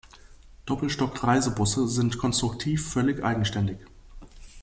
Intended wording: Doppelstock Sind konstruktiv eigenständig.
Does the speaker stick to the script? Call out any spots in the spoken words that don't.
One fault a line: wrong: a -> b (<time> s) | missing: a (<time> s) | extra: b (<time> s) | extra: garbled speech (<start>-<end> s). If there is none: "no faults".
extra: Reisebusse (1.2 s)
extra: völlig (2.9 s)